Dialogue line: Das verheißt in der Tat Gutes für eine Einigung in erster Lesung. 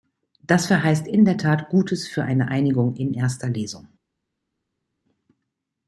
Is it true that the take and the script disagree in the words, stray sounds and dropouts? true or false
false